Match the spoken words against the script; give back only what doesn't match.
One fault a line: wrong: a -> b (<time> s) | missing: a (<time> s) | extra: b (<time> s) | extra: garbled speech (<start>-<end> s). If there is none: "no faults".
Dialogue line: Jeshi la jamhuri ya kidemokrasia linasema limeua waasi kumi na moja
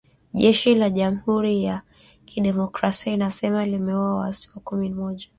missing: na (4.9 s)